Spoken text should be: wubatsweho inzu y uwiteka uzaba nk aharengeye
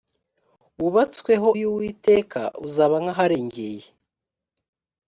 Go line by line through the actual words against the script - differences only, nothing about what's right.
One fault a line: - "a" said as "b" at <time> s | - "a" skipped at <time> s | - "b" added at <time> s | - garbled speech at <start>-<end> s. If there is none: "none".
- "inzu" skipped at 1.5 s